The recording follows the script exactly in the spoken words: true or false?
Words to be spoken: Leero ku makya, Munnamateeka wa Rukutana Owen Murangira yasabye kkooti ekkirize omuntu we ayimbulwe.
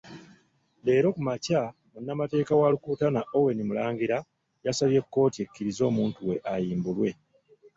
true